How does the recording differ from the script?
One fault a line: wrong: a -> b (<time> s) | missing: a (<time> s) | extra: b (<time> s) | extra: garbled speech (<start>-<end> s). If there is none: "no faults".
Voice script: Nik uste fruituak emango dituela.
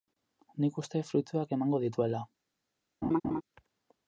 no faults